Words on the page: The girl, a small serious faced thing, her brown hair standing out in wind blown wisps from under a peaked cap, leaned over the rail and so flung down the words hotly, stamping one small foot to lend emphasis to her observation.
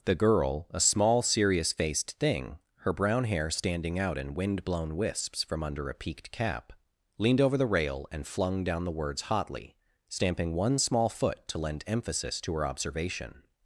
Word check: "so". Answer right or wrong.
wrong